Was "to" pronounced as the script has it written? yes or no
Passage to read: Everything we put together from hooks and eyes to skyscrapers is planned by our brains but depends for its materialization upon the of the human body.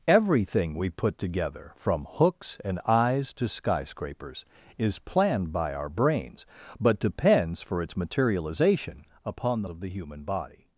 yes